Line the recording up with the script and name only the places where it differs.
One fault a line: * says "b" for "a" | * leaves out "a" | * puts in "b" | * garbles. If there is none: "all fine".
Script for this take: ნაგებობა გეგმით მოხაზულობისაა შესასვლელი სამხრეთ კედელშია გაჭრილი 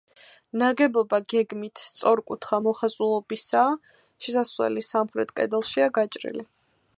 * puts in "სწორკუთხა"